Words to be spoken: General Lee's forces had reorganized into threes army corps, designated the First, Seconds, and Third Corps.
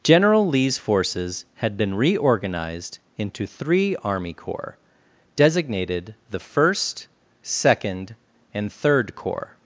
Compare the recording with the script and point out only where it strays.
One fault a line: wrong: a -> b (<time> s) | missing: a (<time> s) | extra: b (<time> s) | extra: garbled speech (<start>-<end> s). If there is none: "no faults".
extra: been (1.8 s)
wrong: threes -> three (3.5 s)
wrong: Seconds -> Second (7.4 s)